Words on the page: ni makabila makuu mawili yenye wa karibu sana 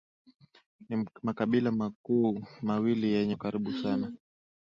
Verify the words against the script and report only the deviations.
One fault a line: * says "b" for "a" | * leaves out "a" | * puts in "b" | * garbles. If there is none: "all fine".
all fine